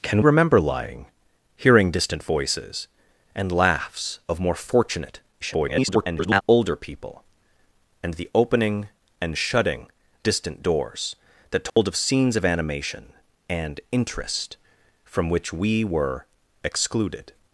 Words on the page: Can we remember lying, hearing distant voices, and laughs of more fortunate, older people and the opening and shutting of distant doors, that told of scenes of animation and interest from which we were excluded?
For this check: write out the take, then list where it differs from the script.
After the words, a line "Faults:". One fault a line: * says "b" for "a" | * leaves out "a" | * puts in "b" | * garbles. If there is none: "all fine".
Can remember lying, hearing distant voices, and laughs of more fortunate, [garbled] older people and the opening and shutting distant doors, that told of scenes of animation and interest from which we were excluded?
Faults:
* leaves out "we"
* garbles
* leaves out "of"